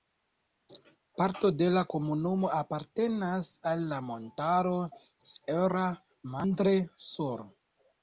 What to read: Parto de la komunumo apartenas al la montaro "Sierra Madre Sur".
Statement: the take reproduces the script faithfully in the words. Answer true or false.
true